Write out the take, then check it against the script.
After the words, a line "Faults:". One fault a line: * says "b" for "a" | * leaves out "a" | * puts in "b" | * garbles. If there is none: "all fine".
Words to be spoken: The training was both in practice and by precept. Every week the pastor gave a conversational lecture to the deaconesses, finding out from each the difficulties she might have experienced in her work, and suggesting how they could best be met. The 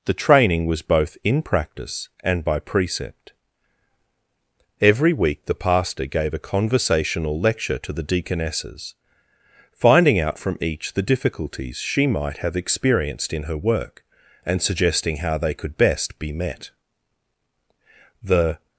The training was both in practice and by precept. Every week the pastor gave a conversational lecture to the deaconesses, finding out from each the difficulties she might have experienced in her work, and suggesting how they could best be met. The
Faults:
all fine